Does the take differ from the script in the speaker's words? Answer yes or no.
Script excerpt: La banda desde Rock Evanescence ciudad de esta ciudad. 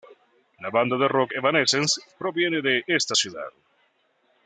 yes